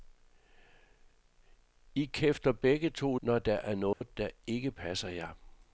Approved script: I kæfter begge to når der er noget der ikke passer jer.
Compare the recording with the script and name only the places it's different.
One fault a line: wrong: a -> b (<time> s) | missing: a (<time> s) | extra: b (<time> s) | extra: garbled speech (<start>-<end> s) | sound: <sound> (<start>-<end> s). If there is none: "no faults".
sound: dropout (3.9-4.0 s)